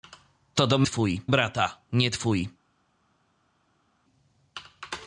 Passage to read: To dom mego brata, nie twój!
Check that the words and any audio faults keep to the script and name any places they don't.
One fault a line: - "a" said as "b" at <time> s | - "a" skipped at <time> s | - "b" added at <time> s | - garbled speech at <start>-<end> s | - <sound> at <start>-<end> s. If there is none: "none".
- "mego" said as "twój" at 0.8 s